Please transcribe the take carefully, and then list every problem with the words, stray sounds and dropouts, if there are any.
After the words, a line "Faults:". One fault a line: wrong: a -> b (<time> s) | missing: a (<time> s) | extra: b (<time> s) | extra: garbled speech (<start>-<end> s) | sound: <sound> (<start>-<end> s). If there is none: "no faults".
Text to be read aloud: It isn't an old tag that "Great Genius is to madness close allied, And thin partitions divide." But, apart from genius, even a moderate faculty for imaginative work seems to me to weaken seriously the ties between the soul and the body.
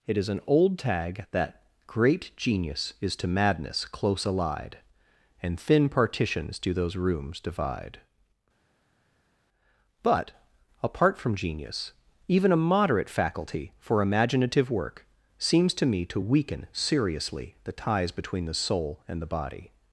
It is an old tag that "Great Genius is to madness close allied, And thin partitions do those rooms divide." But, apart from genius, even a moderate faculty for imaginative work seems to me to weaken seriously the ties between the soul and the body.
Faults:
wrong: isn't -> is (0.2 s)
extra: do those rooms (6.6 s)